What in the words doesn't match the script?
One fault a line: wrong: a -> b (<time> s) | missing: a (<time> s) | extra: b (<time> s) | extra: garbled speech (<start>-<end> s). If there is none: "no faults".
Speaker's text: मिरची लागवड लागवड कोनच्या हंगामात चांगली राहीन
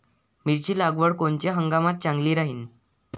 missing: लागवड (1.1 s)